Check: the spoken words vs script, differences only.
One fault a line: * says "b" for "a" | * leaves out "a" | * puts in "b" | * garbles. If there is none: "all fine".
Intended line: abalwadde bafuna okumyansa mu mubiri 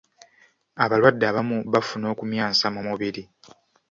* puts in "abamu"